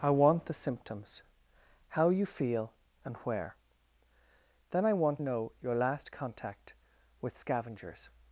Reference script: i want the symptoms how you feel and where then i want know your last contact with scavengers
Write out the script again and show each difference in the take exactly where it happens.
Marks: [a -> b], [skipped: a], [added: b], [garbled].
i want the symptoms how you feel and where then i want know your last contact with scavengers